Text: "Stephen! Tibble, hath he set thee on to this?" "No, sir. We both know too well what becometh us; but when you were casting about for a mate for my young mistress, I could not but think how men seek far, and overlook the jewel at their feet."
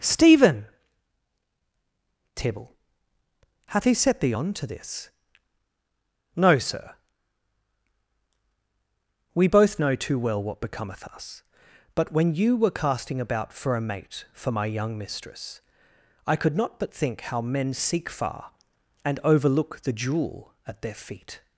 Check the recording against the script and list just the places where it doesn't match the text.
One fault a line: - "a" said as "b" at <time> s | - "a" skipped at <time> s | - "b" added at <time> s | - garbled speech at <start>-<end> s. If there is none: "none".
none